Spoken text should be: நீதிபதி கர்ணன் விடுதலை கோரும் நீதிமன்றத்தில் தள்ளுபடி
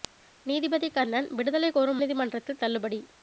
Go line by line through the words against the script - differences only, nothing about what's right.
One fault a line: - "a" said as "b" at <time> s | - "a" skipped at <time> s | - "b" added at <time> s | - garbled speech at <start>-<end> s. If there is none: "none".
none